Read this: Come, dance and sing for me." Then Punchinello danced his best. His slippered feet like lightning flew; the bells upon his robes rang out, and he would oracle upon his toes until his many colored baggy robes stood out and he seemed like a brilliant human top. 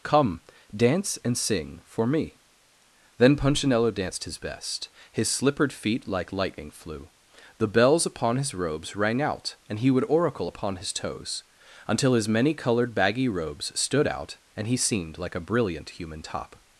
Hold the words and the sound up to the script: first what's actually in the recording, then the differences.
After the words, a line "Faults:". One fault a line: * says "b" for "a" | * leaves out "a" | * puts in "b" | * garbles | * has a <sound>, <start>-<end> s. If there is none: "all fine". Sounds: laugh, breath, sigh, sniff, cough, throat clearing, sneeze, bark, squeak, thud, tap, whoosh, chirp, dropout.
Come, dance and sing for me." Then Punchinello danced his best. His slippered feet like lightning flew; the bells upon his robes rang out, and he would oracle upon his toes until his many colored baggy robes stood out and he seemed like a brilliant human top.
Faults:
all fine